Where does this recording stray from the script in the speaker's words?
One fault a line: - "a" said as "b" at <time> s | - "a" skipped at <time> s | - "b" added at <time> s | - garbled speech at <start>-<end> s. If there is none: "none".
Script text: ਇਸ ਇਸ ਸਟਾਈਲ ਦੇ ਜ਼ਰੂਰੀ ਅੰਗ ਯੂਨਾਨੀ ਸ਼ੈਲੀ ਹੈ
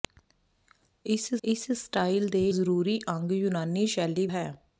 none